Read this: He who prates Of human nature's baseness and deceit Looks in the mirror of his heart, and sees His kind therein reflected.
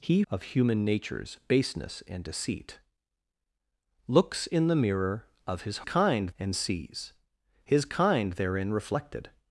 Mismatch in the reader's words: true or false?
true